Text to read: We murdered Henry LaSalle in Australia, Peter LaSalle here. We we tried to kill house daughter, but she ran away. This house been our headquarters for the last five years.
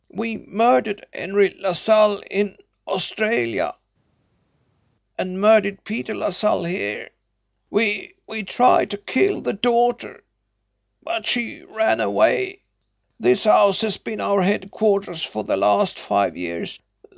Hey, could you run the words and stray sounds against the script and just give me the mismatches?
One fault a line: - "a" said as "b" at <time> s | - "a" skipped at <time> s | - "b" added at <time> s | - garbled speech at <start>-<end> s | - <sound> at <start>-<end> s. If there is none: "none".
- "and murdered" added at 5.2 s
- "house" said as "the" at 9.4 s
- "has" added at 13.8 s